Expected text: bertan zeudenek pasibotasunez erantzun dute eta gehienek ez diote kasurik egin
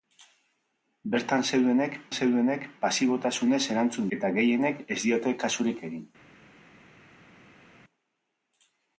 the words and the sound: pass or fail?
fail